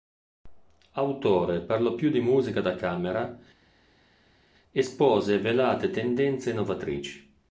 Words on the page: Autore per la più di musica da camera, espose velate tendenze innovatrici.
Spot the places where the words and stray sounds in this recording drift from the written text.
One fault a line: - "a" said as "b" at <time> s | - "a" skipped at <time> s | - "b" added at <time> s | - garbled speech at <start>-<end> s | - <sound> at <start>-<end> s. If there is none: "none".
- "la" said as "lo" at 1.8 s